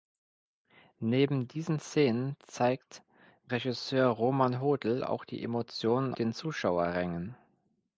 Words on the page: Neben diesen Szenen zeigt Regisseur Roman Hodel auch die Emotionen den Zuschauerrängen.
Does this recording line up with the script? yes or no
yes